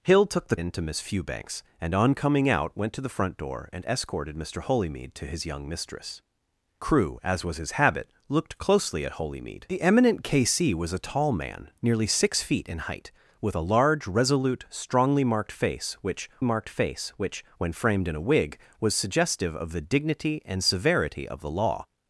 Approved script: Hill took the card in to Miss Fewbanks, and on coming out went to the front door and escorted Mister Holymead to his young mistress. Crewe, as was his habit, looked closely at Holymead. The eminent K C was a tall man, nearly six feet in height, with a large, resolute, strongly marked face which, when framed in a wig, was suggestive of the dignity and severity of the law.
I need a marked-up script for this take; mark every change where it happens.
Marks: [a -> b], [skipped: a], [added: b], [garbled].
Hill took the [skipped: card] in to Miss Fewbanks, and on coming out went to the front door and escorted Mister Holymead to his young mistress. Crewe, as was his habit, looked closely at Holymead. The eminent K C was a tall man, nearly six feet in height, with a large, resolute, strongly marked face which, [added: marked face which] when framed in a wig, was suggestive of the dignity and severity of the law.